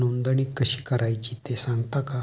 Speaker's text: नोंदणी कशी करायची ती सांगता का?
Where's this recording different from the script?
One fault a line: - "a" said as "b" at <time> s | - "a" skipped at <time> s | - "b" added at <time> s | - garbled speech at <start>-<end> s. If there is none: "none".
- "ती" said as "ते" at 1.5 s